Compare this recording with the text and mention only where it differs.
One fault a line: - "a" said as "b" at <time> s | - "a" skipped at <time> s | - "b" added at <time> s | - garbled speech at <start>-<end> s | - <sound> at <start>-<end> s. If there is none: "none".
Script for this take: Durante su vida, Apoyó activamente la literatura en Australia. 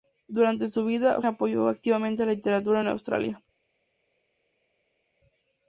none